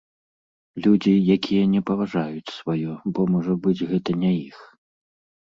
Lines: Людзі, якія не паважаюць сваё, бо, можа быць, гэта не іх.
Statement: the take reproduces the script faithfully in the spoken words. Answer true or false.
true